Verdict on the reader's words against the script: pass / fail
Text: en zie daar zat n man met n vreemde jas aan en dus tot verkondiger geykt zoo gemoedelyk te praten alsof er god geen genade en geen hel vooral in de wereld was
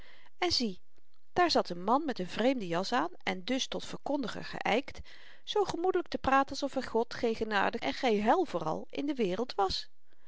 pass